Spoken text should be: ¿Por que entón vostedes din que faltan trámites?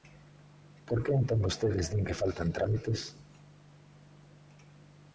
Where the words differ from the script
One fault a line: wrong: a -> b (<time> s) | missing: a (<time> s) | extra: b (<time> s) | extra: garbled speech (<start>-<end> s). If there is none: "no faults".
no faults